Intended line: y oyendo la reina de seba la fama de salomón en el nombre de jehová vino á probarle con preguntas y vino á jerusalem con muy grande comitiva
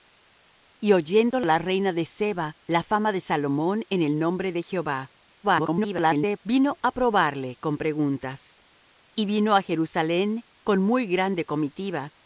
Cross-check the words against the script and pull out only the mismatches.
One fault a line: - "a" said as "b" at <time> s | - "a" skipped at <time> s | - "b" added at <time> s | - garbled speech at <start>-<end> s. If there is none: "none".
- garbled speech at 5.4-6.4 s